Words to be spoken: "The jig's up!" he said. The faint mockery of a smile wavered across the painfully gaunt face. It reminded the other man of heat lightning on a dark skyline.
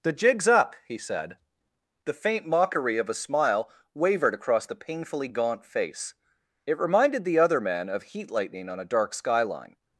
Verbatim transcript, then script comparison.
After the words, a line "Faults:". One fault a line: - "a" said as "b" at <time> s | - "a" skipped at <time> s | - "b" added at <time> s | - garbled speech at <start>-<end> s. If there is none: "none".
"The jig's up!" he said. The faint mockery of a smile wavered across the painfully gaunt face. It reminded the other man of heat lightning on a dark skyline.
Faults:
none